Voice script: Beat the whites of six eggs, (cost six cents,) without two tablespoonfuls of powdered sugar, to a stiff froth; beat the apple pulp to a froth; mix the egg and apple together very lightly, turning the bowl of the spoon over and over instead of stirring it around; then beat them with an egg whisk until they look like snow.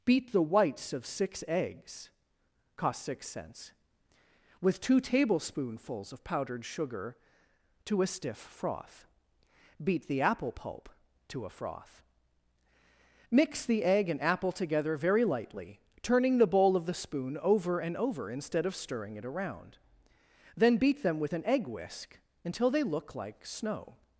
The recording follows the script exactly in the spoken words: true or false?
false